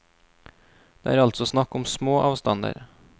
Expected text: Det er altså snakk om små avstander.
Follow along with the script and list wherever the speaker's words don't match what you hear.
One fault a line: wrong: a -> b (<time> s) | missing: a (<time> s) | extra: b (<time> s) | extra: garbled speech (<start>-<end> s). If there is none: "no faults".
no faults